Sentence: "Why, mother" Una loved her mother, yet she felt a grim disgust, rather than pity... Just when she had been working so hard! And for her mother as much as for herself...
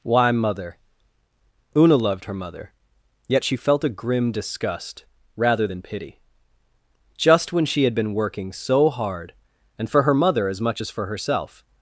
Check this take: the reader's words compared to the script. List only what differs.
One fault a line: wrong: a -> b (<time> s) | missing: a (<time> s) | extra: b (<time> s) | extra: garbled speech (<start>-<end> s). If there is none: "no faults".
no faults